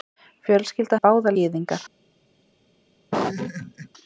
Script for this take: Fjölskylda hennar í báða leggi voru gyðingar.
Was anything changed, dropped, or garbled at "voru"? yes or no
yes